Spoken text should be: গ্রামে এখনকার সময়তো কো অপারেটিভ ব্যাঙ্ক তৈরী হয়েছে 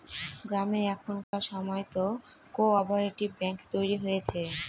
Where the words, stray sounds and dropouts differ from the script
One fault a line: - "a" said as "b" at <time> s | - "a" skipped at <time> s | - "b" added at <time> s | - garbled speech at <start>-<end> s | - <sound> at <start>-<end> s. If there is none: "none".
- dropout at 1.2-1.3 s